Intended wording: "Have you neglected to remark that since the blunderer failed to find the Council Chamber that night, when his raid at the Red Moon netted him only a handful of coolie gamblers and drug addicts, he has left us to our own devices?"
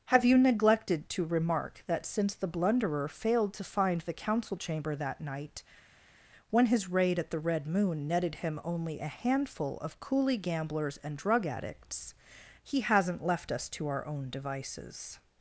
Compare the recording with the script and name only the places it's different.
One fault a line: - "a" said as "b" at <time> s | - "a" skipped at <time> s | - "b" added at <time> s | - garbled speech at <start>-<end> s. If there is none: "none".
- "has" said as "hasn't" at 12.8 s